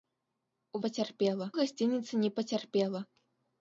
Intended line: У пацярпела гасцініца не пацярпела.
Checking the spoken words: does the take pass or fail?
pass